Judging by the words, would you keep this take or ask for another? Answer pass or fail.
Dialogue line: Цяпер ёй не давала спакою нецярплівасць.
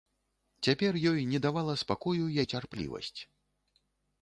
pass